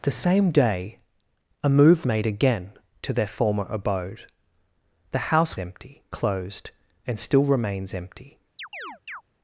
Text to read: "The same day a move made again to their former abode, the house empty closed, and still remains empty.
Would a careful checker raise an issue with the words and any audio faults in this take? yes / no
yes